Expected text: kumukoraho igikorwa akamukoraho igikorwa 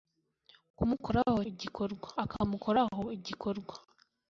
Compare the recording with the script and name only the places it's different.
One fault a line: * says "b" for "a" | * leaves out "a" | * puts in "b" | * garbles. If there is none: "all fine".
all fine